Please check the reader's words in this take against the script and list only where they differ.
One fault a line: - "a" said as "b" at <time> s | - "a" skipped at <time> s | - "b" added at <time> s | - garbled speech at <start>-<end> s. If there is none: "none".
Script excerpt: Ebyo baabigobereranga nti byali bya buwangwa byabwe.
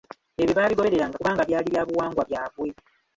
- "nti" said as "kubanga" at 1.2 s